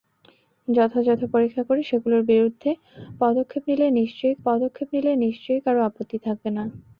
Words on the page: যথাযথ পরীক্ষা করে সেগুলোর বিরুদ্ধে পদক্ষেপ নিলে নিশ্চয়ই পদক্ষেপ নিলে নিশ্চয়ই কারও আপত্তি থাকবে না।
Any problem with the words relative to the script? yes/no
no